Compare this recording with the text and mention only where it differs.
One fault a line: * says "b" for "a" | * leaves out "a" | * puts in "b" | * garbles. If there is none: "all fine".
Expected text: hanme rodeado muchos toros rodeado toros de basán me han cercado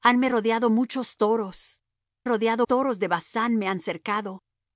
all fine